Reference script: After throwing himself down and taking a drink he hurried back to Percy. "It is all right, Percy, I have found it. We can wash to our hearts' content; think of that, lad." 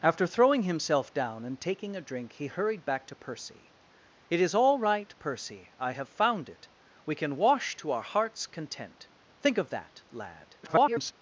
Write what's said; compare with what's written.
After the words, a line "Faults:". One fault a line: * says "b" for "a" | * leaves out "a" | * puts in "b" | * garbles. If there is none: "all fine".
After throwing himself down and taking a drink he hurried back to Percy. "It is all right, Percy, I have found it. We can wash to our hearts' content; think of that, lad." [garbled]
Faults:
* garbles